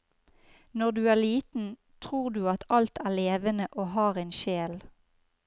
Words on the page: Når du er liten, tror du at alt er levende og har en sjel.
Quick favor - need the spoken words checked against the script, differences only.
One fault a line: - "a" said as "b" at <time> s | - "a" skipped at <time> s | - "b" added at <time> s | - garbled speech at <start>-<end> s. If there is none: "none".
none